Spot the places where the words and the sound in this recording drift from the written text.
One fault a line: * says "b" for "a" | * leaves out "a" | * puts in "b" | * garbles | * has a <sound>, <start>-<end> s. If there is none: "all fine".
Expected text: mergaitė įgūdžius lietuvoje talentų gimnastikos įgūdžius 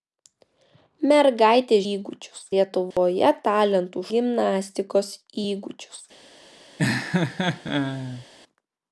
* has a dropout, 2.9-3.0 s
* has a laugh, 6.8-8.3 s